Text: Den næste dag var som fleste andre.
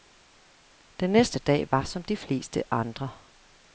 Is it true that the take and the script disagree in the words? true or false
true